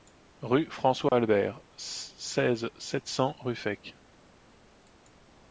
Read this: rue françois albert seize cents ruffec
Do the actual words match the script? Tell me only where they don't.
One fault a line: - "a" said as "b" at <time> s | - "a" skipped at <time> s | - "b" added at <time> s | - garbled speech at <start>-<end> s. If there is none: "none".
- "sept" added at 2.8 s